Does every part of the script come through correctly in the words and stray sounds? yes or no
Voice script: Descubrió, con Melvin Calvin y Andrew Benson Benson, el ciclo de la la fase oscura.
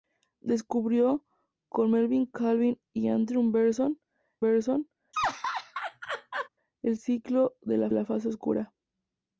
no